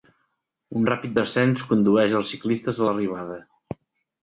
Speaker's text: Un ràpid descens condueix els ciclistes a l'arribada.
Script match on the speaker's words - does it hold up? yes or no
yes